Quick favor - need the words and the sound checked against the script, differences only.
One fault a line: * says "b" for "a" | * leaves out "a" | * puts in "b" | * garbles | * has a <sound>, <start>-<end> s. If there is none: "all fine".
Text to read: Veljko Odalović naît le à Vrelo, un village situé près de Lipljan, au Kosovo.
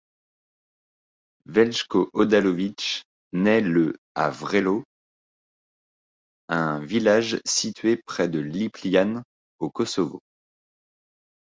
all fine